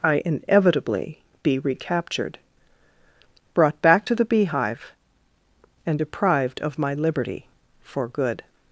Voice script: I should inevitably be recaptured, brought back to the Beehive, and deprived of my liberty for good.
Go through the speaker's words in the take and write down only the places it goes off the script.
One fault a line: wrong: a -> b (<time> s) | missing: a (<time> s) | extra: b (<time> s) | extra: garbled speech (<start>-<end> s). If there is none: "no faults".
missing: should (0.2 s)